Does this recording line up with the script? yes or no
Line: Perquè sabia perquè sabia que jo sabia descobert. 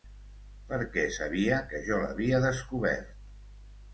no